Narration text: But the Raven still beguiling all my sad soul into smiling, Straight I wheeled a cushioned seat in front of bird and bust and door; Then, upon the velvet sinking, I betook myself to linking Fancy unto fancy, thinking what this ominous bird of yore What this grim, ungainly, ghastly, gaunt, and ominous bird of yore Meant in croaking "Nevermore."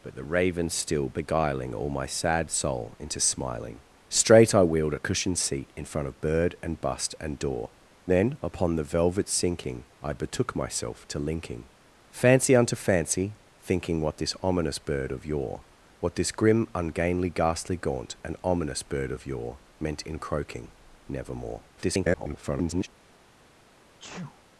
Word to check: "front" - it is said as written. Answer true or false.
true